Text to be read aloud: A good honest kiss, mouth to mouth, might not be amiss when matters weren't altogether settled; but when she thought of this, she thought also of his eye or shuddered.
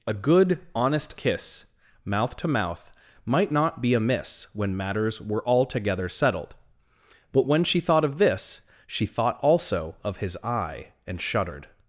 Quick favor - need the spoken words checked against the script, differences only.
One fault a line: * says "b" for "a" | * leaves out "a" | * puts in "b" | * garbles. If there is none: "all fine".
* says "were" for "weren't"
* says "and" for "or"